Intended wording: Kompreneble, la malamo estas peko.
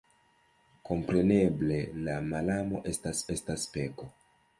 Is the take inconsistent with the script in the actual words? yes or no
yes